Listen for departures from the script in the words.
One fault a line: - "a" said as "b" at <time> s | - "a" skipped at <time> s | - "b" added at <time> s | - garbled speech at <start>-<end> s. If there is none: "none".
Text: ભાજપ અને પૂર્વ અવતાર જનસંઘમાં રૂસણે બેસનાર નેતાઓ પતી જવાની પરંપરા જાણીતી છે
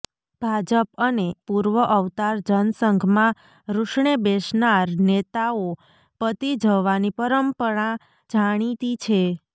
none